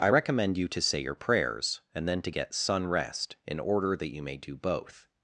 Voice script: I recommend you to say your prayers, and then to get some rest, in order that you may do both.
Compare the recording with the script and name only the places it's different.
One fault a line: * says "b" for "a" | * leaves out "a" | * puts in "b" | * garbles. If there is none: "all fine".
* says "sun" for "some"